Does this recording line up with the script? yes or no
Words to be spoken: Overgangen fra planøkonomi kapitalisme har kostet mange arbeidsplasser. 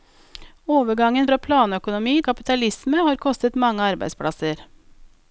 yes